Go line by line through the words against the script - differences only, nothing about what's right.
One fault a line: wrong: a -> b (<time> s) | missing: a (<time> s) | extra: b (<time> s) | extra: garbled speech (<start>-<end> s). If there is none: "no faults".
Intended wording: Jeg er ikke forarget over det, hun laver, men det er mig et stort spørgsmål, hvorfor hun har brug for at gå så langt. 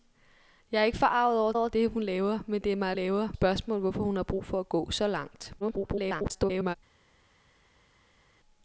extra: over (1.6 s)
wrong: stort -> laver (2.9 s)
extra: garbled speech (5.6-6.8 s)